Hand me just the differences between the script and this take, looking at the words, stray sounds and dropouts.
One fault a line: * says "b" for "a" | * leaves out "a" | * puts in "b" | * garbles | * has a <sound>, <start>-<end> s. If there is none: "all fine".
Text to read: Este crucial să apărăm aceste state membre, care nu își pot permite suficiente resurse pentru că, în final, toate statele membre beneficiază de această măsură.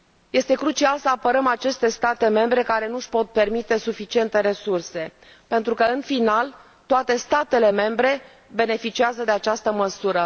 all fine